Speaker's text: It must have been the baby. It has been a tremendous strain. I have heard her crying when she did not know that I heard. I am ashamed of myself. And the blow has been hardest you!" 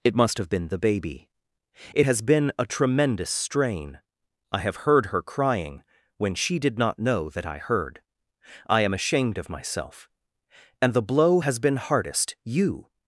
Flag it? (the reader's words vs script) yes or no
no